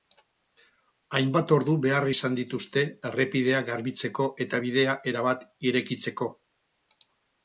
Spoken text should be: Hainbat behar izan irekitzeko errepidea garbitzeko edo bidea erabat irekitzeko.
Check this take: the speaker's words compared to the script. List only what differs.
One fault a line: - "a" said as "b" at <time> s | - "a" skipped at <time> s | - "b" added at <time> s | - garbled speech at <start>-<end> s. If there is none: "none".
- "ordu" added at 1.6 s
- "irekitzeko" said as "dituzte" at 2.4 s
- "edo" said as "eta" at 4.4 s